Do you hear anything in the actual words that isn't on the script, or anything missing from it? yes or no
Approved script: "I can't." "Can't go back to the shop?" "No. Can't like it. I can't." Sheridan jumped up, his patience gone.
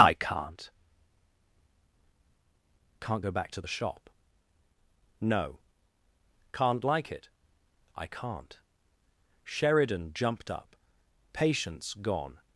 yes